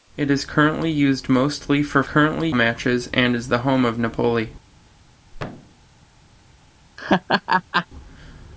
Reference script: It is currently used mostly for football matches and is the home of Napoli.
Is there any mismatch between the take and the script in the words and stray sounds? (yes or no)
yes